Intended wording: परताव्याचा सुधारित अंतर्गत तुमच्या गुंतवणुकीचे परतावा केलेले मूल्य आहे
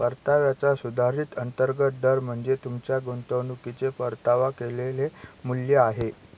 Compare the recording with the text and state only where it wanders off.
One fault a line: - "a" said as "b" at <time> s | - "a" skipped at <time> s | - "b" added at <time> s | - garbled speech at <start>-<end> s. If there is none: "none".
- "दर म्हणजे" added at 2.0 s